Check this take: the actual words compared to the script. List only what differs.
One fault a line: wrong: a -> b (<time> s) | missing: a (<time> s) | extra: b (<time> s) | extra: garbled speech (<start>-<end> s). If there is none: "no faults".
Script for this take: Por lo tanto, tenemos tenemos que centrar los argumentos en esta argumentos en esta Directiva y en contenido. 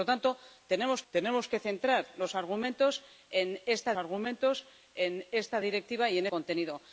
no faults